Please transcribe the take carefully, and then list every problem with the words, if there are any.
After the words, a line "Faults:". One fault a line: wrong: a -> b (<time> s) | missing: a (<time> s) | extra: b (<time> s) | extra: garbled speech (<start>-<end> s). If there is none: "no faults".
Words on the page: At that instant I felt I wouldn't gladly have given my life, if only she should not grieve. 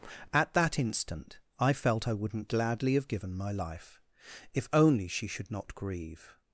At that instant I felt I wouldn't gladly have given my life, if only she should not grieve.
Faults:
no faults